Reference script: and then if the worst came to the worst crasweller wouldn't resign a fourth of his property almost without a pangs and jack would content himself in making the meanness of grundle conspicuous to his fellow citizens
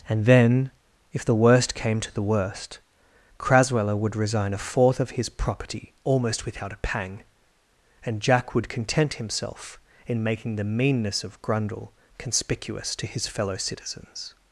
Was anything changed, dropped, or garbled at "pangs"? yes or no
yes